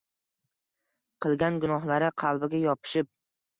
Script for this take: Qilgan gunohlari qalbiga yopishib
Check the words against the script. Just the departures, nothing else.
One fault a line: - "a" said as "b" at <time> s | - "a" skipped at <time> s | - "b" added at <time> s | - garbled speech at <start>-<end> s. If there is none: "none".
none